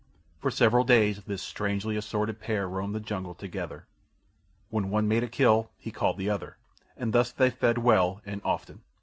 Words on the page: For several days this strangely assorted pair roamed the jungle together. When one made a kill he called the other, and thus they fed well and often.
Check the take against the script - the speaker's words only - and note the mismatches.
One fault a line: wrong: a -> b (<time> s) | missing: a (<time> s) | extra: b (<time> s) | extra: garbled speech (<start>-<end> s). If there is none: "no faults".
no faults